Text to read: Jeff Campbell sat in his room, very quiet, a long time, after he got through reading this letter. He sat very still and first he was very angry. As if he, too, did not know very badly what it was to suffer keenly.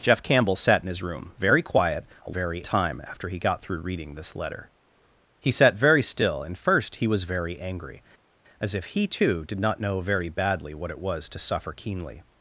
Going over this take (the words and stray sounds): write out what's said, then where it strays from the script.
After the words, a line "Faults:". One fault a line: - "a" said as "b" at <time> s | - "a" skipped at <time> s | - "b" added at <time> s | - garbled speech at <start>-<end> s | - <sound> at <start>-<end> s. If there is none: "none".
Jeff Campbell sat in his room, very quiet, a very time, after he got through reading this letter. He sat very still and first he was very angry. As if he, too, did not know very badly what it was to suffer keenly.
Faults:
- "long" said as "very" at 2.3 s